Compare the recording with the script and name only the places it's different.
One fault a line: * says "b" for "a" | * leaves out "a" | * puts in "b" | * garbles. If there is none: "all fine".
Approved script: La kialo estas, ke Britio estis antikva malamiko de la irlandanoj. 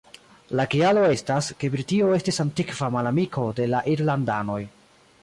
all fine